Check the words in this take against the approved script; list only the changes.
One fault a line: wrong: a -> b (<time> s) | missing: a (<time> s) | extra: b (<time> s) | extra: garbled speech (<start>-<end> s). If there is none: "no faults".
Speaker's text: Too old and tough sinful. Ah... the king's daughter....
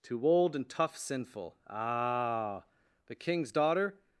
no faults